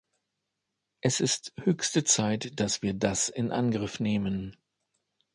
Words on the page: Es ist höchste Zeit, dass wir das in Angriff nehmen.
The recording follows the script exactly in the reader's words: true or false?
true